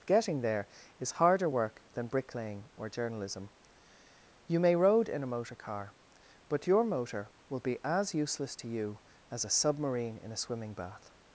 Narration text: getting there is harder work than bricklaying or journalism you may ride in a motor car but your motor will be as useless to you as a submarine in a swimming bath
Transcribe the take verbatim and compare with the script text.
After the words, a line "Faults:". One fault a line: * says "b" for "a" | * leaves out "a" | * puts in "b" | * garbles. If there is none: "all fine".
getting there is harder work than bricklaying or journalism you may road in a motor car but your motor will be as useless to you as a submarine in a swimming bath
Faults:
* says "road" for "ride"